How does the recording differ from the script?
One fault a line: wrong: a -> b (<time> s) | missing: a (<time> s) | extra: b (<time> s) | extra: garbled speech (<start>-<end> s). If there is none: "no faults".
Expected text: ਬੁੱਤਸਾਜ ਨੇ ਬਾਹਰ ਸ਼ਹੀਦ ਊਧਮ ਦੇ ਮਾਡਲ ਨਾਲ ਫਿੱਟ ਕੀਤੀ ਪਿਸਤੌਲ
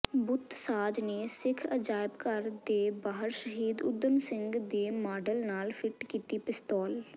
extra: ਸਿੱਖ ਅਜਾਇਬਘਰ ਦੇ (1.3 s)
extra: ਸਿੰਘ (4.2 s)